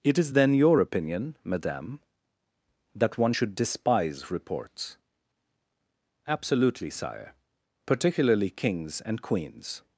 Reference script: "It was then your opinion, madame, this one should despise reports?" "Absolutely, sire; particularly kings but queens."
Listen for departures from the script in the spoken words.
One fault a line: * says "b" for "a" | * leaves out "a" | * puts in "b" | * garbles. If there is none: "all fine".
* says "is" for "was"
* says "that" for "this"
* says "and" for "but"